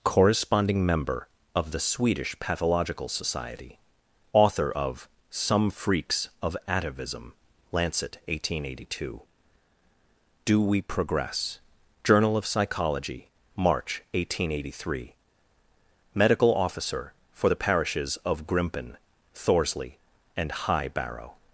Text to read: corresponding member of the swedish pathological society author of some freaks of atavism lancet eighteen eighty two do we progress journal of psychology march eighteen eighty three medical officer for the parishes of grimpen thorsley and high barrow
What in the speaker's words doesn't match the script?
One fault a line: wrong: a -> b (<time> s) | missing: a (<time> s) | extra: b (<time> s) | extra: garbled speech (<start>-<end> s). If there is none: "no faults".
no faults